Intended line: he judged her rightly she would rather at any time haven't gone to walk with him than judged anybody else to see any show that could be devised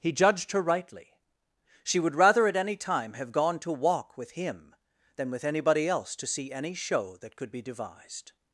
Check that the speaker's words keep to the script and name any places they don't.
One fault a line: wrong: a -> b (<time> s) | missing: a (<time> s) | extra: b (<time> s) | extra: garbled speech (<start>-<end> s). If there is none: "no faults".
wrong: haven't -> have (3.1 s)
wrong: judged -> with (5.3 s)